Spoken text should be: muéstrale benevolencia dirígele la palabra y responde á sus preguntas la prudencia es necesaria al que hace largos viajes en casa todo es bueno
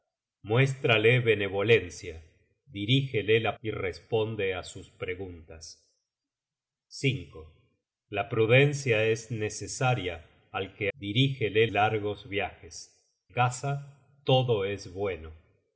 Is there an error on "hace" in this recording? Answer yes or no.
yes